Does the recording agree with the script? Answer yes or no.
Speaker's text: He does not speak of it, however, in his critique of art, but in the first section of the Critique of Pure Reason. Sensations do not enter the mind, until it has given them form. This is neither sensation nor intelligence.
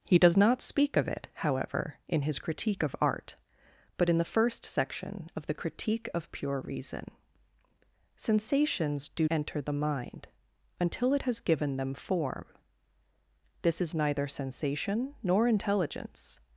no